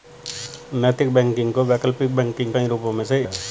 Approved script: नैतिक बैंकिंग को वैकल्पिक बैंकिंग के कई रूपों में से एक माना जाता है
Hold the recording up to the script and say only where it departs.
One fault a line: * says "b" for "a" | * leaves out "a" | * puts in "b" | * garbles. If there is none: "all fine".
* leaves out "के"
* leaves out "एक माना जाता"